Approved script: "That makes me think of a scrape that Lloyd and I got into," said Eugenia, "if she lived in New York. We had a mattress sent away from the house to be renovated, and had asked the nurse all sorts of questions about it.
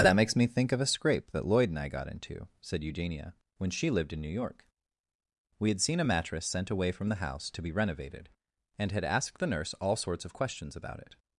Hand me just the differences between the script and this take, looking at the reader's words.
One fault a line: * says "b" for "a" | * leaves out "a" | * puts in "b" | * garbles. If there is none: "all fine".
* says "when" for "if"
* puts in "seen"